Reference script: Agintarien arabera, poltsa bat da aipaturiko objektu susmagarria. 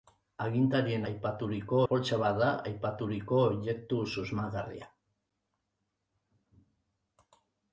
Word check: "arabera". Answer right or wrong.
wrong